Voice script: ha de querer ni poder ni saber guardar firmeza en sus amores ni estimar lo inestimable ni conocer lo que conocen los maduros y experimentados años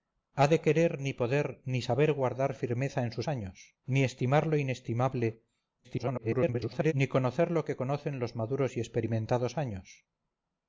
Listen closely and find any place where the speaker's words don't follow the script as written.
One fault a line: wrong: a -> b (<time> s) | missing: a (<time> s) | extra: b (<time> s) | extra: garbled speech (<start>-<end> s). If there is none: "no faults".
wrong: amores -> años (3.3 s)
extra: garbled speech (5.8-6.9 s)